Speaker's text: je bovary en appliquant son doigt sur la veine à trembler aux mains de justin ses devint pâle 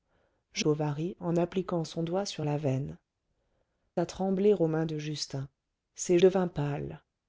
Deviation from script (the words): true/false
false